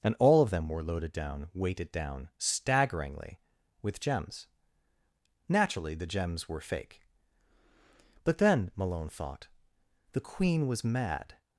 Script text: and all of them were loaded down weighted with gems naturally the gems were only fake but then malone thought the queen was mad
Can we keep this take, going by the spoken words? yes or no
no